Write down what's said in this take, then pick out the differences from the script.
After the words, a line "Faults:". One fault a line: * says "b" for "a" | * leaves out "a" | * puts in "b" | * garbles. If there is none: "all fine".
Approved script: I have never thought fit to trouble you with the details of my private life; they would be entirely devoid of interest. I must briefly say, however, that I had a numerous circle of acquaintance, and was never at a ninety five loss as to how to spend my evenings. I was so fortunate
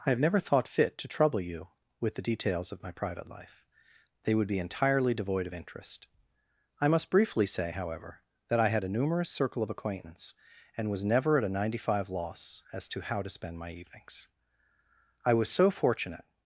I have never thought fit to trouble you with the details of my private life; they would be entirely devoid of interest. I must briefly say, however, that I had a numerous circle of acquaintance, and was never at a ninety five loss as to how to spend my evenings. I was so fortunate
Faults:
all fine